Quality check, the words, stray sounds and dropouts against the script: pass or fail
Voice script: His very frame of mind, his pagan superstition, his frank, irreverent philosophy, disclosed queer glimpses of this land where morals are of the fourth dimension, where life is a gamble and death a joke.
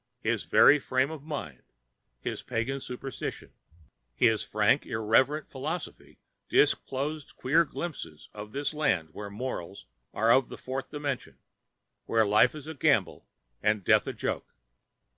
pass